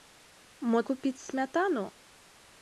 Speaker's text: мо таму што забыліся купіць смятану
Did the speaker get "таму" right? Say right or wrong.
wrong